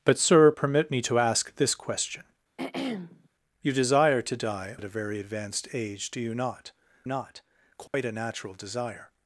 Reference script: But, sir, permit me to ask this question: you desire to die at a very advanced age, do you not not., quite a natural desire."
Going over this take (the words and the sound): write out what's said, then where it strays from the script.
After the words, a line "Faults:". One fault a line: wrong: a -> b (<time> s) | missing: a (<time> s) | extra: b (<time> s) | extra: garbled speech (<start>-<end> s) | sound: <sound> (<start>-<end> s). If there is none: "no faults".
But, sir, permit me to ask this question: you desire to die at a very advanced age, do you not not., quite a natural desire."
Faults:
sound: throat clearing (2.6-3.3 s)
sound: dropout (7.9-7.9 s)